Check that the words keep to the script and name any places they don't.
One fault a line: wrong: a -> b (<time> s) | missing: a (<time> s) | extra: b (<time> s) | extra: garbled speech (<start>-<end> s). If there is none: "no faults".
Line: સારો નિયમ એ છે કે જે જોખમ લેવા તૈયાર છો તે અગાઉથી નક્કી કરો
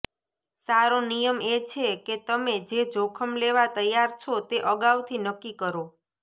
extra: તમે (2.3 s)